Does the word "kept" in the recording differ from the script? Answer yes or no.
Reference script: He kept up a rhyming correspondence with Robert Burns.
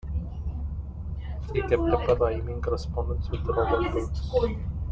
no